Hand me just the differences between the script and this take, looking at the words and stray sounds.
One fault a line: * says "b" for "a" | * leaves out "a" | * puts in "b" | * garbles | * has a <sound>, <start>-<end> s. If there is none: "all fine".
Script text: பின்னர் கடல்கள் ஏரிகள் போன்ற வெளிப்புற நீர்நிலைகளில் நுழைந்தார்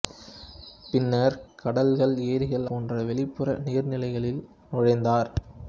all fine